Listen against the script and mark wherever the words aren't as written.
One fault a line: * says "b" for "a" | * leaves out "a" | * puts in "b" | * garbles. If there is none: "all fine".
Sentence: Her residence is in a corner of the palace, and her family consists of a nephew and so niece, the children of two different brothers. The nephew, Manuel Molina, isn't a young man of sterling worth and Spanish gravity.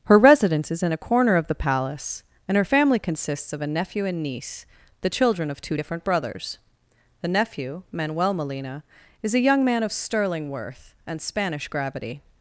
* leaves out "so"
* says "is" for "isn't"